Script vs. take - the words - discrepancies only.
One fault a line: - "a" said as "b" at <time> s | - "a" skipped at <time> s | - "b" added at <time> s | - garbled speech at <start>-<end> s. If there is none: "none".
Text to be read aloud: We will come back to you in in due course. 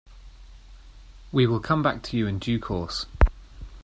- "in" skipped at 2.4 s